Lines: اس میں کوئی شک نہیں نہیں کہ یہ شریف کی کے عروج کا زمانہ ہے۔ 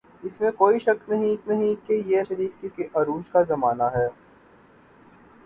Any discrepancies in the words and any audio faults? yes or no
no